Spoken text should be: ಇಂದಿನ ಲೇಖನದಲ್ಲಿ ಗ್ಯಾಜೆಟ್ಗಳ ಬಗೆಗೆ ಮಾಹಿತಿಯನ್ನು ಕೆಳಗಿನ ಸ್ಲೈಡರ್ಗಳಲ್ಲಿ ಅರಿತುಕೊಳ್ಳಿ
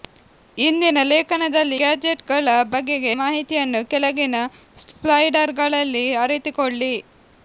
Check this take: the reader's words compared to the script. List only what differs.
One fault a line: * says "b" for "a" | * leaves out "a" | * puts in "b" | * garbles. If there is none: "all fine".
all fine